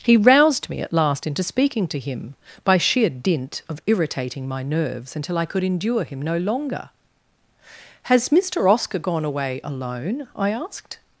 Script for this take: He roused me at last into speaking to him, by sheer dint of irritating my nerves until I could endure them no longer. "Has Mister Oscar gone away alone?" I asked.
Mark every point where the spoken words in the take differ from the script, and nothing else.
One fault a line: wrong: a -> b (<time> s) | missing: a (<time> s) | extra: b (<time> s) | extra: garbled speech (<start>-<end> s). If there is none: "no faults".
wrong: them -> him (6.0 s)